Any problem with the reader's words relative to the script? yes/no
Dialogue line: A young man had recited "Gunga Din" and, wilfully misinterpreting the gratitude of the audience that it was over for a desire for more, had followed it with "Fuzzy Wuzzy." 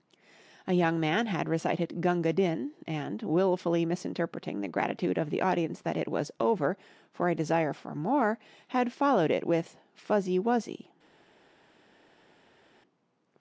no